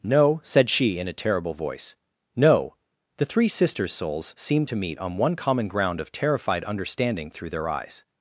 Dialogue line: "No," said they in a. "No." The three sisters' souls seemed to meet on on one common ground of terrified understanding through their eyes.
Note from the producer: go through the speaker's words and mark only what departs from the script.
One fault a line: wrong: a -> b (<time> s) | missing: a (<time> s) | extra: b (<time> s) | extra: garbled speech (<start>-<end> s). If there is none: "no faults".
wrong: they -> she (0.7 s)
extra: terrible voice (1.2 s)
missing: on (5.2 s)